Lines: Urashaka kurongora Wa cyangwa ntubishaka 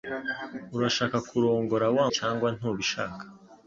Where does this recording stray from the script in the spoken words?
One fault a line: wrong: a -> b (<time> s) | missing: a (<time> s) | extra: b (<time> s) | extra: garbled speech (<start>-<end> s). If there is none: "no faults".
no faults